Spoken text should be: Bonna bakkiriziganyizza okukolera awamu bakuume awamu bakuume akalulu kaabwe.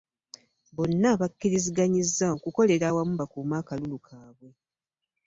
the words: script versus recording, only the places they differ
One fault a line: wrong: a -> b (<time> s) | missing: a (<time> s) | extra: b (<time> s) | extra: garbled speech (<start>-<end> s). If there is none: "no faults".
missing: awamu bakuume (3.6 s)